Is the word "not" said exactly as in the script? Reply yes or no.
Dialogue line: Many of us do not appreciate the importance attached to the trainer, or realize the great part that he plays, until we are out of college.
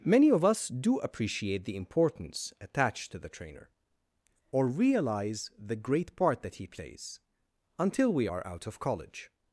no